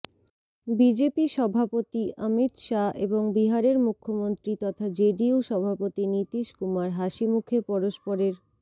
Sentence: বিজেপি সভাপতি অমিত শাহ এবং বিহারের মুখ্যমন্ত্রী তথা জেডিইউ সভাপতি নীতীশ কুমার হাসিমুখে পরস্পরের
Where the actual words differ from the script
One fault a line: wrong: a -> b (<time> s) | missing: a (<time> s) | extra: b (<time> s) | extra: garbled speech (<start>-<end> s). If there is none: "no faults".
no faults